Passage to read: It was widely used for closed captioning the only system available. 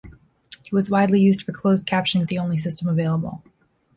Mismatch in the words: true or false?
false